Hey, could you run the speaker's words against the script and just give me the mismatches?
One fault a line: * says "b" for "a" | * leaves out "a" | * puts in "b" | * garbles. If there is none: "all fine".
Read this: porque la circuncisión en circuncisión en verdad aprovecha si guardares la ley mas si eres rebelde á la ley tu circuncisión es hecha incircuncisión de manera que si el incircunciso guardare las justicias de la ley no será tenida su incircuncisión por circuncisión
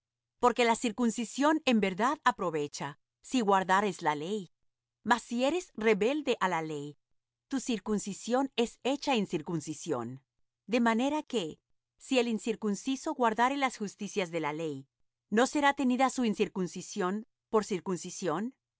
* leaves out "circuncisión en"